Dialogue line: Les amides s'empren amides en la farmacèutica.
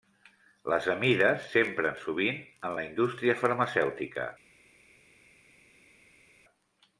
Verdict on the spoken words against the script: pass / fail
fail